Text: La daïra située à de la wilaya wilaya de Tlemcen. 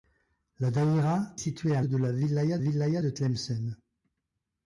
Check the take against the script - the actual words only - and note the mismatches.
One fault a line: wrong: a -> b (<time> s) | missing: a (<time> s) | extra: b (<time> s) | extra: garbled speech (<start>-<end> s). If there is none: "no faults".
no faults